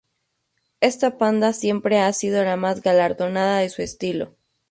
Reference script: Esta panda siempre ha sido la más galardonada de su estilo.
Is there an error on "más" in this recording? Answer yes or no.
no